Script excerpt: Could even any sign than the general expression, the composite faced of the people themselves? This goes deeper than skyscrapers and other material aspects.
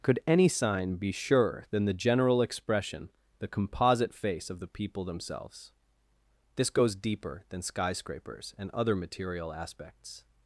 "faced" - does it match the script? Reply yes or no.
no